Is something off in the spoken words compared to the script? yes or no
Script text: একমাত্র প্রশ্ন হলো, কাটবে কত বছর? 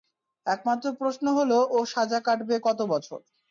yes